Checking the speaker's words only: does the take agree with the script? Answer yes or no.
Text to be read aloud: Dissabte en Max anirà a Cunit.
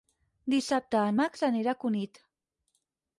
yes